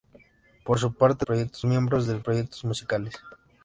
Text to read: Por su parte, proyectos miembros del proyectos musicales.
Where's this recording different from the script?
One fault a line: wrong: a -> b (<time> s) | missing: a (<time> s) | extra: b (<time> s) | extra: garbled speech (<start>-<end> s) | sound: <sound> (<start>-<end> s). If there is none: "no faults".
no faults